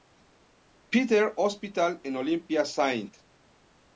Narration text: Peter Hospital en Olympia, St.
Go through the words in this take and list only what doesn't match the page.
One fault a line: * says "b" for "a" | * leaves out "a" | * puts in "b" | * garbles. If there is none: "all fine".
all fine